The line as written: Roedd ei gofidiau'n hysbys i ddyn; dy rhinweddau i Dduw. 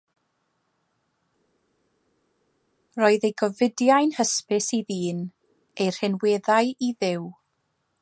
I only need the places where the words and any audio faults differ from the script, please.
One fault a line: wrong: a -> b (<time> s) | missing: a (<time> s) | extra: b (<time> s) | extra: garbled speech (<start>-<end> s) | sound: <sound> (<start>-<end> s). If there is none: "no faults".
wrong: dy -> ei (5.8 s)